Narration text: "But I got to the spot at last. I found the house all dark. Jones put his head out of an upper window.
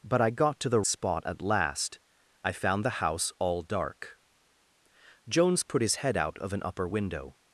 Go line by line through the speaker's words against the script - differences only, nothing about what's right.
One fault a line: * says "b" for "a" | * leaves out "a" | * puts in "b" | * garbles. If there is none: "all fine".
all fine